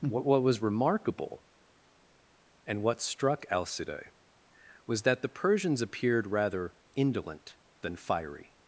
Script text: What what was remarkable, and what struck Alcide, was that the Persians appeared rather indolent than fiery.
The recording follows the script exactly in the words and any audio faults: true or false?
true